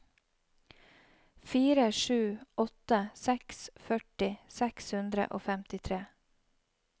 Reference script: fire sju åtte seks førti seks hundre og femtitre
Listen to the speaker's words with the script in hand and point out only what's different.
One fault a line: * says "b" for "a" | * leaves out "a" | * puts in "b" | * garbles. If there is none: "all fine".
all fine